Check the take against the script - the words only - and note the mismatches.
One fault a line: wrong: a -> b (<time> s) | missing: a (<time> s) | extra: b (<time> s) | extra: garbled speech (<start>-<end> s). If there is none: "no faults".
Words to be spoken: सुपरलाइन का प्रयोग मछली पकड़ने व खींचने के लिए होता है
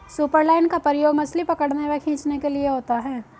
no faults